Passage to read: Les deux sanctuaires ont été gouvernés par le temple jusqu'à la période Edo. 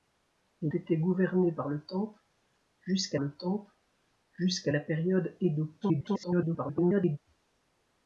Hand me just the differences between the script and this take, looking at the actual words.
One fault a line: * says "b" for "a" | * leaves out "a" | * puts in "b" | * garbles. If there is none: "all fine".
* says "été gouvernés par le temple jusqu'à" for "deux sanctuaires ont été gouvernés par"
* garbles